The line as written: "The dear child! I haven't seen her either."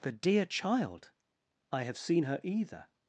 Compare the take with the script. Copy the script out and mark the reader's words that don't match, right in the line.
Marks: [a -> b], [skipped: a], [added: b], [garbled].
"The dear child! I [haven't -> have] seen her either."